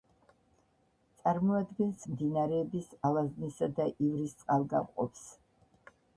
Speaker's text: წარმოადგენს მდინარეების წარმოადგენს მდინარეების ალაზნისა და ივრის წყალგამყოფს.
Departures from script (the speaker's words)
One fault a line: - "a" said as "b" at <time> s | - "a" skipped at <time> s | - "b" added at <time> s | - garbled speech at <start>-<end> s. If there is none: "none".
- "წარმოადგენს მდინარეების" skipped at 2.9 s